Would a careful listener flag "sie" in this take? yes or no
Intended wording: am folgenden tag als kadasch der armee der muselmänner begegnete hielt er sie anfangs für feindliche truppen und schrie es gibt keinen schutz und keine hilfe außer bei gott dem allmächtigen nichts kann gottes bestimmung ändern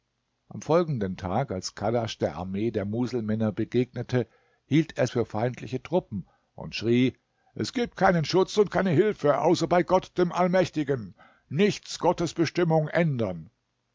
yes